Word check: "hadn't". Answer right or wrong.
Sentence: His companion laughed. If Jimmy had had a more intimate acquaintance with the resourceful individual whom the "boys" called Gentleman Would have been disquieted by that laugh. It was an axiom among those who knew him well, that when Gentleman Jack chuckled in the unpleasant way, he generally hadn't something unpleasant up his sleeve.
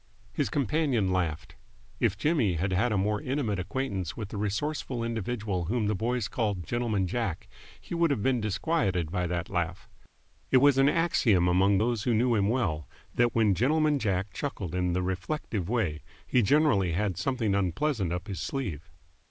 wrong